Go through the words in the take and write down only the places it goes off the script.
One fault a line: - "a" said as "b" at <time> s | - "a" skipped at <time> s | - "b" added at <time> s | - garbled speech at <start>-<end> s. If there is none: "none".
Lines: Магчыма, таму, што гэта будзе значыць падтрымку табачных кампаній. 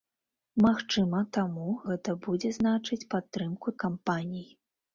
- "што" skipped at 1.7 s
- "табачных" skipped at 3.8 s